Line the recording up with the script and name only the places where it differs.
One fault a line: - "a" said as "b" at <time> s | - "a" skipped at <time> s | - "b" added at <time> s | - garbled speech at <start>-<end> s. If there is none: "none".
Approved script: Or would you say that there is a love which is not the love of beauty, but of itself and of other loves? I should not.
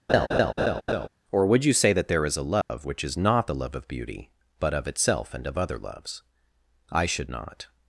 none